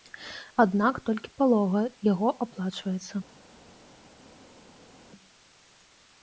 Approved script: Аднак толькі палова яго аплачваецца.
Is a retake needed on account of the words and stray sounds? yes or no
no